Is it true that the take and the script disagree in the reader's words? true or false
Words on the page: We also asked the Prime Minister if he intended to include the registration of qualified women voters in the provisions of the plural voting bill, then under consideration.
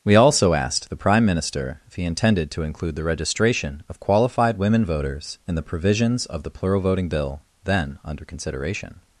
false